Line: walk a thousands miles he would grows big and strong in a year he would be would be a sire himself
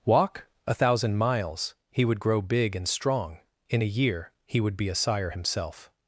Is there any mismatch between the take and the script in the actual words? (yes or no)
yes